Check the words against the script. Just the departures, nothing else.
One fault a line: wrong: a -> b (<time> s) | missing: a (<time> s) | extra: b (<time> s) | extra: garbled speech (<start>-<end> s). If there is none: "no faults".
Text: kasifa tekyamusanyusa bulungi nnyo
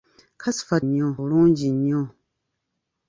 wrong: tekyamusanyusa -> nnyo (0.8 s)